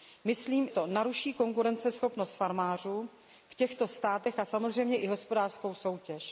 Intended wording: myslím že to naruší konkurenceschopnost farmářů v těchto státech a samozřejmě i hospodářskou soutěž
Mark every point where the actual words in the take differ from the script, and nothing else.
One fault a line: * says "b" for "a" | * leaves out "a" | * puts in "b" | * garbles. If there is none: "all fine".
* leaves out "že"